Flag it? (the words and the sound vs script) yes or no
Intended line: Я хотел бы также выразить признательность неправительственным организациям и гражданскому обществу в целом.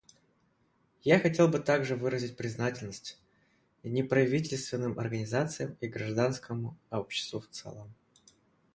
no